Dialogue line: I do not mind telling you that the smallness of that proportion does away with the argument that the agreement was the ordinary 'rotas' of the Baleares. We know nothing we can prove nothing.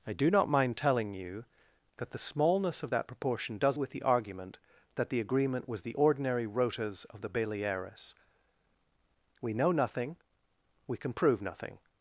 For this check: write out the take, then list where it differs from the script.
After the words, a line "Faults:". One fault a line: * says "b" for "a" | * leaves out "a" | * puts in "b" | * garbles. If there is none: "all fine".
I do not mind telling you that the smallness of that proportion does with the argument that the agreement was the ordinary 'rotas' of the Baleares. We know nothing we can prove nothing.
Faults:
* leaves out "away"